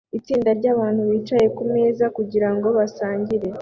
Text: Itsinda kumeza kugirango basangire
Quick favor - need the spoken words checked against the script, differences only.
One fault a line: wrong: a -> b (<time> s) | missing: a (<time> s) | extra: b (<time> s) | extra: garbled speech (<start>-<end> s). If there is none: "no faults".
extra: ryabantu bicaye (0.6 s)